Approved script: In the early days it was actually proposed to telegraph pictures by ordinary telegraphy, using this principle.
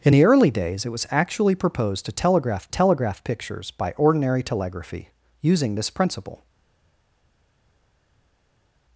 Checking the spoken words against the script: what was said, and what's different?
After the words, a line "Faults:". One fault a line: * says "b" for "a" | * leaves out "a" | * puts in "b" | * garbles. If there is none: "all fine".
In the early days it was actually proposed to telegraph telegraph pictures by ordinary telegraphy, using this principle.
Faults:
* puts in "telegraph"